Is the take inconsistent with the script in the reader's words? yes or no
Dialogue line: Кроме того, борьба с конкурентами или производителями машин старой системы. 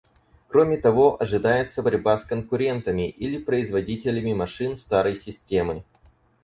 yes